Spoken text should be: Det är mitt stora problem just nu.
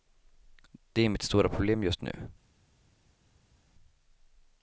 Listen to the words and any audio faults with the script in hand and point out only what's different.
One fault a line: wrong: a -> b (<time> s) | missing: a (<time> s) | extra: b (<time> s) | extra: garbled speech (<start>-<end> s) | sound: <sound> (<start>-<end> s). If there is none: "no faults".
no faults